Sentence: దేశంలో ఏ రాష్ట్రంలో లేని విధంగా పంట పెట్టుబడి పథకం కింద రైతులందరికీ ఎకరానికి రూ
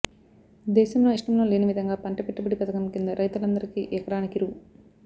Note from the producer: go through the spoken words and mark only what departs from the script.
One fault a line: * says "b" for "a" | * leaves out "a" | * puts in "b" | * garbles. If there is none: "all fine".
* leaves out "ఏ"